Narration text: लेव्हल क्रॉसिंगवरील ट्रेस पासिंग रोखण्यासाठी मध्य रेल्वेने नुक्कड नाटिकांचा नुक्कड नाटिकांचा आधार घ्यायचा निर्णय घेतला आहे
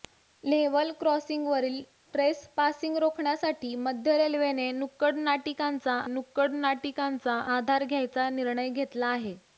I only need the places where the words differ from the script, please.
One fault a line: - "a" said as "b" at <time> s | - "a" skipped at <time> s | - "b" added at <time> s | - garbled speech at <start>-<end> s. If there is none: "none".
none